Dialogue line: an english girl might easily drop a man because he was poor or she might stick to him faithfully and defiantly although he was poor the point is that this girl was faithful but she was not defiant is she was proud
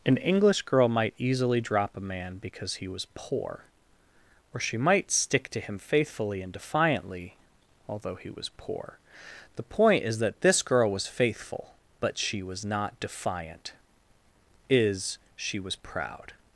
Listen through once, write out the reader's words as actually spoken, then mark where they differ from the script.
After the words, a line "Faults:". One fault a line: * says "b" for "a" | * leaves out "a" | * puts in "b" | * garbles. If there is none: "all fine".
an english girl might easily drop a man because he was poor or she might stick to him faithfully and defiantly although he was poor the point is that this girl was faithful but she was not defiant is she was proud
Faults:
all fine